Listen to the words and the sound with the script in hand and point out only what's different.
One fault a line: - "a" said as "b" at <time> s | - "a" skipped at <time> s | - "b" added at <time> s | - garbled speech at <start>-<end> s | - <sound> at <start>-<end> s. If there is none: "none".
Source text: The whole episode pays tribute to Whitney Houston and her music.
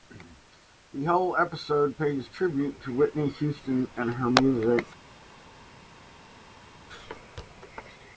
none